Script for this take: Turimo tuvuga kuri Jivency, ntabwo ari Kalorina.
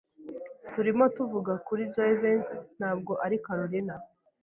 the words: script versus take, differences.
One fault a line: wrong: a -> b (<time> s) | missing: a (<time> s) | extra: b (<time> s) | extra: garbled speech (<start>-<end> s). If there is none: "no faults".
no faults